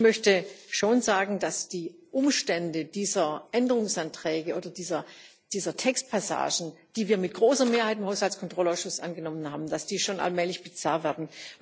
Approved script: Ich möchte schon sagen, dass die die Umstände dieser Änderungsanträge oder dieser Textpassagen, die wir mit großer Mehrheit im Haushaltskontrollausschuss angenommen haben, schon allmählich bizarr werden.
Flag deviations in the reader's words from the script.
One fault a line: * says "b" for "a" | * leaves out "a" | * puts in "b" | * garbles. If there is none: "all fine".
* leaves out "die"